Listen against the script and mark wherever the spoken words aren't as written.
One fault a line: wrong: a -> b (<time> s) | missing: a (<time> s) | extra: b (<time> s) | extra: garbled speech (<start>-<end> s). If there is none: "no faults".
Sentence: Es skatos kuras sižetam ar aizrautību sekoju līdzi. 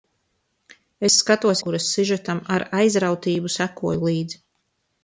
no faults